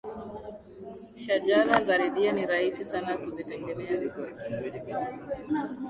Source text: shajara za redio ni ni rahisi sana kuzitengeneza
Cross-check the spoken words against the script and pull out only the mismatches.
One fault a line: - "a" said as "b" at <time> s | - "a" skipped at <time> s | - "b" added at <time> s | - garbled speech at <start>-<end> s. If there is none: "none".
- "ni" skipped at 2.5 s